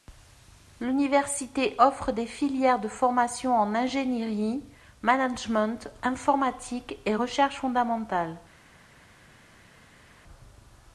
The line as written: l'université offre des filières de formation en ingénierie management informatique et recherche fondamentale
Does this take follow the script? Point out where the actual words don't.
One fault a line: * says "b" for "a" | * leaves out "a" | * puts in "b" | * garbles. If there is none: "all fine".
all fine